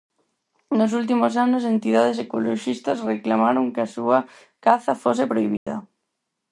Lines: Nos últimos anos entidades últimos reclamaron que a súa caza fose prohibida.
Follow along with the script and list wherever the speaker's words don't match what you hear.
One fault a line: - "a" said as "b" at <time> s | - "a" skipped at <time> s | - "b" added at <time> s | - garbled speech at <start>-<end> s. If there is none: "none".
- "últimos" said as "ecoloxistas" at 2.2 s